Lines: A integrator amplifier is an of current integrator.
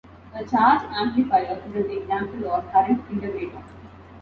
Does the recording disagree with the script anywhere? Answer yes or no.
yes